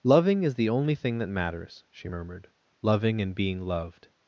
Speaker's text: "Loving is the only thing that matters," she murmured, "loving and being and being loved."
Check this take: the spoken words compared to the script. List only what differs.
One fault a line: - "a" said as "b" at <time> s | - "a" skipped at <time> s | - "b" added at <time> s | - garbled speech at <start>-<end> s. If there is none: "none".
- "and being" skipped at 3.6 s